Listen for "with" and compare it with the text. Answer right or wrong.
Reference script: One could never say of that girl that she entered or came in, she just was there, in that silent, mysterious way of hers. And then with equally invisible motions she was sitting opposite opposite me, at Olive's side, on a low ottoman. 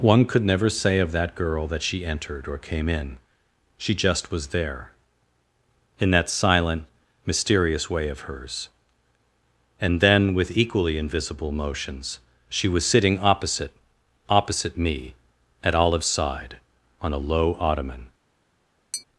right